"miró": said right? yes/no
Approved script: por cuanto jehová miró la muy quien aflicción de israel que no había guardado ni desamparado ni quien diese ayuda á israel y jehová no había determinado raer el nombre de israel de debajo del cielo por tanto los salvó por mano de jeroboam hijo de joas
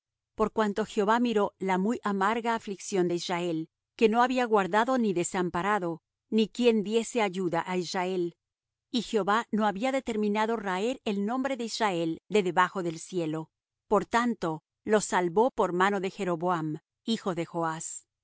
yes